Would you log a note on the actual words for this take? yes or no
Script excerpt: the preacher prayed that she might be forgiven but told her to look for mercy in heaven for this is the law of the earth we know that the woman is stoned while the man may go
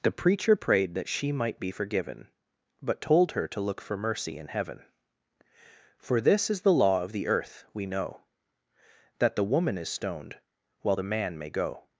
no